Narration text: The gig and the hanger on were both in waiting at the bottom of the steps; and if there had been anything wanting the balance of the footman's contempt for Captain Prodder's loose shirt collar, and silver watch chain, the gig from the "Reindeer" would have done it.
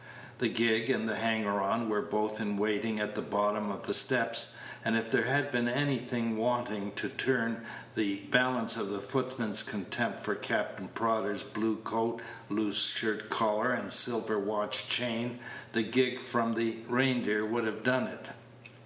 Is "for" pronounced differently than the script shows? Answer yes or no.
no